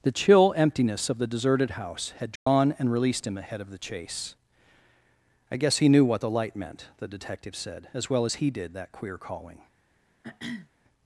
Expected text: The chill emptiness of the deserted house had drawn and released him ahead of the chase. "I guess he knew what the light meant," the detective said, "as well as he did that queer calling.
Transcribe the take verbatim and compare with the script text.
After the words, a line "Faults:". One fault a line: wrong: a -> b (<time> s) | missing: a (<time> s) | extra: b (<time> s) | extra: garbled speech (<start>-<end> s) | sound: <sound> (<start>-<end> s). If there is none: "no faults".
The chill emptiness of the deserted house had drawn and released him ahead of the chase. "I guess he knew what the light meant," the detective said, "as well as he did that queer calling.
Faults:
sound: dropout (2.4-2.5 s)
sound: throat clearing (10.2-10.7 s)